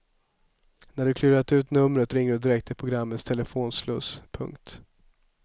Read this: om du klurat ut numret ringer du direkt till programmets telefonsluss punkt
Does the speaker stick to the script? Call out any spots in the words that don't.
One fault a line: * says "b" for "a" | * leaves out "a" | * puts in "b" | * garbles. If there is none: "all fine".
* says "när" for "om"